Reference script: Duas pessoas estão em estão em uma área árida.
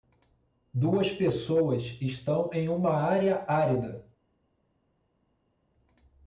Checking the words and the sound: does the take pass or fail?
fail